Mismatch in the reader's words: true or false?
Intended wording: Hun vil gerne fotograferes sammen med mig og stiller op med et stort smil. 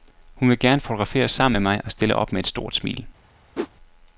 false